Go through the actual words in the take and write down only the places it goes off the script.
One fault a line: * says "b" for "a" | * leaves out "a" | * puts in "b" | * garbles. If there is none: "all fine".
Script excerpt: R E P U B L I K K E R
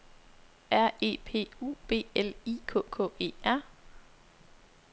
all fine